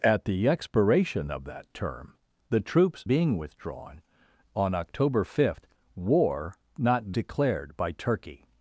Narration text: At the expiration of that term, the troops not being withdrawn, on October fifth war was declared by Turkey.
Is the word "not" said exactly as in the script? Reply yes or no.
no